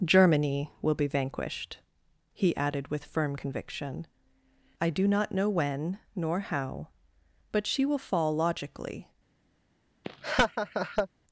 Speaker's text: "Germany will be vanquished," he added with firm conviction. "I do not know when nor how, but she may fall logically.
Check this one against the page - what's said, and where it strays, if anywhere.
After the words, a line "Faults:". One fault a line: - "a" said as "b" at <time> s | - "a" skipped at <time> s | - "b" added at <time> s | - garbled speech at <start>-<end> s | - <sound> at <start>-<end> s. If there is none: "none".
"Germany will be vanquished," he added with firm conviction. "I do not know when nor how, but she will fall logically.
Faults:
- "may" said as "will" at 7.9 s
- laugh at 10.0-11.1 s